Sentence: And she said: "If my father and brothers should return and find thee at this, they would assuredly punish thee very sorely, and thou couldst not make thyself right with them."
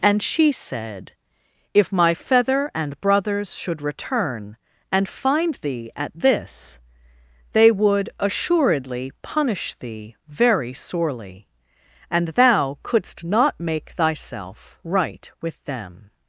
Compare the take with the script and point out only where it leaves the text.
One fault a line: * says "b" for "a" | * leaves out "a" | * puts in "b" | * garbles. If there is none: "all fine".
* says "feather" for "father"